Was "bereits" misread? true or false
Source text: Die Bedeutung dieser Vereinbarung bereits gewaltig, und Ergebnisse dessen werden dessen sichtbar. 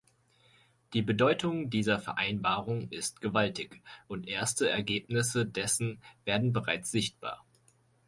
true